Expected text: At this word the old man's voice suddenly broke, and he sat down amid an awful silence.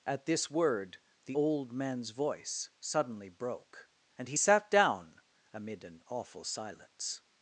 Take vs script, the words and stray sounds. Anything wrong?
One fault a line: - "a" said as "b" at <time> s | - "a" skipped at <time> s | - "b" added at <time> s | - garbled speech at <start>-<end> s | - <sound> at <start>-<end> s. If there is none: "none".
none